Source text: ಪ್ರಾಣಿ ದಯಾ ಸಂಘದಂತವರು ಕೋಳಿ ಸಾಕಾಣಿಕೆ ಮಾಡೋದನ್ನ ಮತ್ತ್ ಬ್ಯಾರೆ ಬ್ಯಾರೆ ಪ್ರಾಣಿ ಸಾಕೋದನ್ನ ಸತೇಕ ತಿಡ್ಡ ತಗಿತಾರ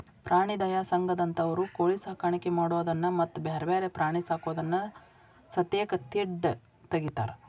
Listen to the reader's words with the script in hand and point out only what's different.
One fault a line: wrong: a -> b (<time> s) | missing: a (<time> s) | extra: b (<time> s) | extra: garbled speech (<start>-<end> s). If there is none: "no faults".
no faults